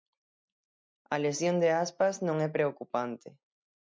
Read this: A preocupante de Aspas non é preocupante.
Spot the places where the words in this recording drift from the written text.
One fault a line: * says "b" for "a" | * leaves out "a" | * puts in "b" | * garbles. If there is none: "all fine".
* says "lesión" for "preocupante"